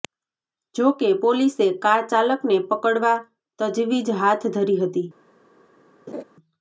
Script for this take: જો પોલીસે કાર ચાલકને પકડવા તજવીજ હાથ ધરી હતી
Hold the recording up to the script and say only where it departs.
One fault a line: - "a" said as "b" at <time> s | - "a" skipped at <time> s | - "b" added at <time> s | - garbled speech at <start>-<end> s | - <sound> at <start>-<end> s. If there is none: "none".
- "કે" added at 0.9 s
- laugh at 6.1-6.2 s